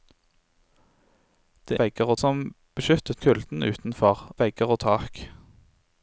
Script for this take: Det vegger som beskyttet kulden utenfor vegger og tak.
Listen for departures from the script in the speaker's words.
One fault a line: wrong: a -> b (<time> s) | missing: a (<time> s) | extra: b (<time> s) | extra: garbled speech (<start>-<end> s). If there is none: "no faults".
no faults